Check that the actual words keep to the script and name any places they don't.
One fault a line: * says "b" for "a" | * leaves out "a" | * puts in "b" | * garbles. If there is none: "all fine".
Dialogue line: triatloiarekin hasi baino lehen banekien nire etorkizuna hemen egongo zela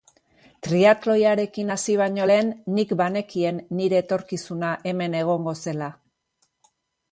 * puts in "nik"